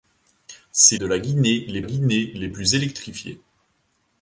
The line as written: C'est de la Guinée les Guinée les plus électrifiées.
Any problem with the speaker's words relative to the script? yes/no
no